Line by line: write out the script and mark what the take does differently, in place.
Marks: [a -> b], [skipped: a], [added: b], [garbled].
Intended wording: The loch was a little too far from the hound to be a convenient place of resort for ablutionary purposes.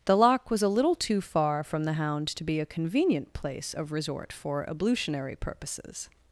The loch was a little too far from the hound to be a convenient place of resort for ablutionary purposes.